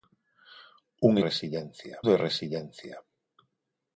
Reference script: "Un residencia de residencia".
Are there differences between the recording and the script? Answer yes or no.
no